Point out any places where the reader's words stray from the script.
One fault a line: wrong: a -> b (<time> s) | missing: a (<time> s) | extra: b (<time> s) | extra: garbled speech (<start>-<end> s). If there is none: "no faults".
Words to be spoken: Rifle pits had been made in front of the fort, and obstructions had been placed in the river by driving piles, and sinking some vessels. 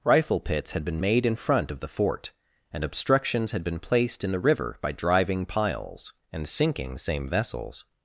wrong: some -> same (7.0 s)